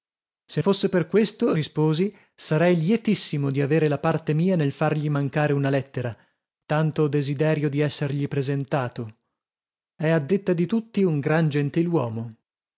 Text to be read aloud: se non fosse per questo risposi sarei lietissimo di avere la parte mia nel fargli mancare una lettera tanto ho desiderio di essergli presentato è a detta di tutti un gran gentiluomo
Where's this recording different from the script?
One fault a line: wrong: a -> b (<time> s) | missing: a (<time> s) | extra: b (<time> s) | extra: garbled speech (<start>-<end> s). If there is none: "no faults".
missing: non (0.6 s)